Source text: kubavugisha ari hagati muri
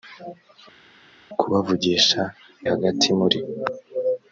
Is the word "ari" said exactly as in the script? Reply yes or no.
no